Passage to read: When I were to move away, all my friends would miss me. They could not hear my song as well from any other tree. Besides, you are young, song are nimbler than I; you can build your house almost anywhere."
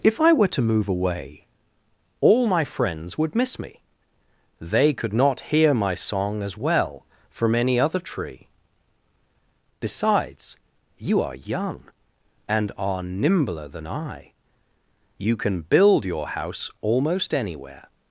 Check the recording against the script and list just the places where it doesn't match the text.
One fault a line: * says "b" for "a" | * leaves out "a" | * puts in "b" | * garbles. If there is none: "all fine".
* says "If" for "When"
* says "and" for "song"